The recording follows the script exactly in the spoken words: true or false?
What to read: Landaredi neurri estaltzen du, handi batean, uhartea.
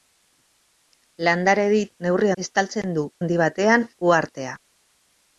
true